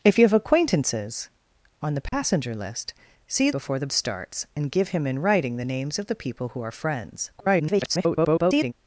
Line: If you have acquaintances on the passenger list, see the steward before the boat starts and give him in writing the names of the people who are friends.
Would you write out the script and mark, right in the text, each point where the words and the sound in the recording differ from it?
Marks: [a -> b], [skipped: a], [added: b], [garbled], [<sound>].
If you have acquaintances on the passenger [dropout] list, see [skipped: the steward] before the [skipped: boat] starts and give him in writing the names of the people who are friends. [garbled]